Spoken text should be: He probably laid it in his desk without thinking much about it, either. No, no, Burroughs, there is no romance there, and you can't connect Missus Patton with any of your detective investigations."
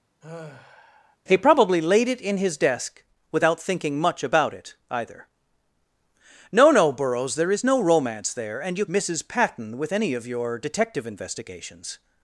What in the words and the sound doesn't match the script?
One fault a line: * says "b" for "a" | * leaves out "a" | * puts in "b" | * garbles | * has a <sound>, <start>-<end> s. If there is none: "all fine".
* has a sigh, 0.2-1.2 s
* leaves out "can't connect"